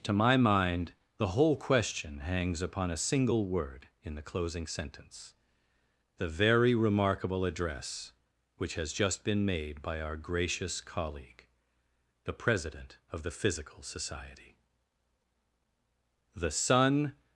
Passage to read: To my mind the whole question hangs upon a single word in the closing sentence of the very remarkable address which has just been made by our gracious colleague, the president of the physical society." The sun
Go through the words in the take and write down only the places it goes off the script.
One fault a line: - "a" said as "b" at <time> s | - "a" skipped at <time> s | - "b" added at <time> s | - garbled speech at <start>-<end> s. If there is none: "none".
- "of" skipped at 5.3 s